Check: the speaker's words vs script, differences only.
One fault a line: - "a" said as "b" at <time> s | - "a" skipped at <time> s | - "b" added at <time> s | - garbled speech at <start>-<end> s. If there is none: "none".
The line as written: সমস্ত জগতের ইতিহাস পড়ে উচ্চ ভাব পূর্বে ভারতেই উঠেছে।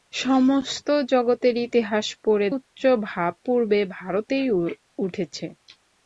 none